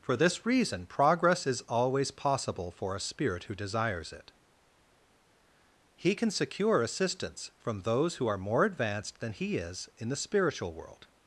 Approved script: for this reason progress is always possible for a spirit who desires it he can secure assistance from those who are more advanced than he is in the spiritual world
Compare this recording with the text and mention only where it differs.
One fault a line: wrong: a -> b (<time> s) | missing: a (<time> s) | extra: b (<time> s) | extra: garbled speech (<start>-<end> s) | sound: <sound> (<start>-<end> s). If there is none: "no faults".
no faults